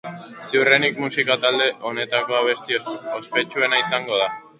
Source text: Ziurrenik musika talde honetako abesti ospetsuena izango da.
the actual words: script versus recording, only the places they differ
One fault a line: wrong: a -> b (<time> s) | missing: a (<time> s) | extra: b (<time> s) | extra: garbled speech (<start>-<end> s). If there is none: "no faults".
no faults